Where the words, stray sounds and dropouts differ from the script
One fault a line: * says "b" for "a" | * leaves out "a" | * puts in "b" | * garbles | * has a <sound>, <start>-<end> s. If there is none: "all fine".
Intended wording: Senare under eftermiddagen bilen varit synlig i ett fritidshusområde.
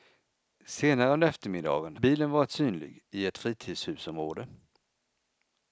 all fine